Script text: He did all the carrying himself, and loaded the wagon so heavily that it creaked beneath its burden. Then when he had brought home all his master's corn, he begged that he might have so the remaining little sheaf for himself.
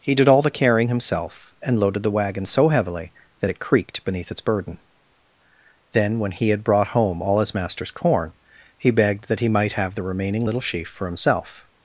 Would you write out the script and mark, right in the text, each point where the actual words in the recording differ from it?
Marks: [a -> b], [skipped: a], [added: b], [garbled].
He did all the carrying himself, and loaded the wagon so heavily that it creaked beneath its burden. Then when he had brought home all his master's corn, he begged that he might have [skipped: so] the remaining little sheaf for himself.